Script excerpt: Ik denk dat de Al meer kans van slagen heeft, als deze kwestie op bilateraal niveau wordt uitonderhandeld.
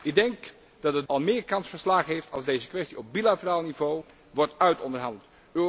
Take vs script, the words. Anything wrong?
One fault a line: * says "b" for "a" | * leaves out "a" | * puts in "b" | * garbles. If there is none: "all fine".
all fine